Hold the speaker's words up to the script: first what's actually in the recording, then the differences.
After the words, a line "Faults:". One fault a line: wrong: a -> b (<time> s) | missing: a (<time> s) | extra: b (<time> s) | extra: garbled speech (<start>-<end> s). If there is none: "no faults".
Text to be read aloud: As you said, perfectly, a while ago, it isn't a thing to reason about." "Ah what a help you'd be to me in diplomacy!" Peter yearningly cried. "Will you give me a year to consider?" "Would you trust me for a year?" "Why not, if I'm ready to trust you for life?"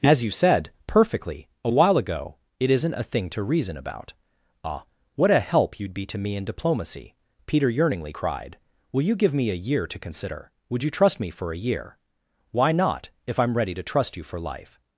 As you said, perfectly, a while ago, it isn't a thing to reason about." "Ah what a help you'd be to me in diplomacy!" Peter yearningly cried. "Will you give me a year to consider?" "Would you trust me for a year?" "Why not, if I'm ready to trust you for life?"
Faults:
no faults